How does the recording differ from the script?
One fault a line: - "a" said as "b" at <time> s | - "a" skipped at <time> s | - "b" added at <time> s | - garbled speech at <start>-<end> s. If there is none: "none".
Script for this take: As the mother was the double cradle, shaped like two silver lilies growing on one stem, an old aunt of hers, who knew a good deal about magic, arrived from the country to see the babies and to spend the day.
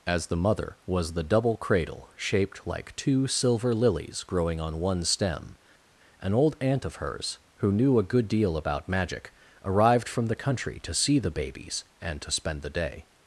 none